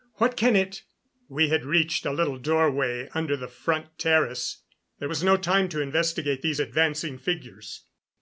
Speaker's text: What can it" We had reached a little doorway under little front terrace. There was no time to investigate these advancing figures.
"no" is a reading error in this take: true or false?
false